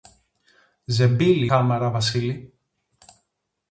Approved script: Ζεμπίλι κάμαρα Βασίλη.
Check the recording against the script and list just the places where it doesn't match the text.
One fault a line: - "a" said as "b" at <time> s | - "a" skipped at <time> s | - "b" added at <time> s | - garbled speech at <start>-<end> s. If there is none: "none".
none